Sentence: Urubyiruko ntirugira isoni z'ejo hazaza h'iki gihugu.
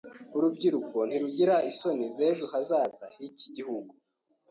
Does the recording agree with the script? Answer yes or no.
yes